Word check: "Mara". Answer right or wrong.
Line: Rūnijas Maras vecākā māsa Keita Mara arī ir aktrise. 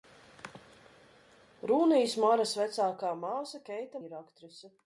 wrong